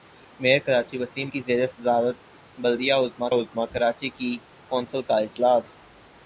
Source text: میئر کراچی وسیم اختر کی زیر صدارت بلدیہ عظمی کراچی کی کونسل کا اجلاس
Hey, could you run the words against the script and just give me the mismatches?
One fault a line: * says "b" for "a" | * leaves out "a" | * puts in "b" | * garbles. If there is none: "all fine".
* leaves out "اختر"
* puts in "عظمی"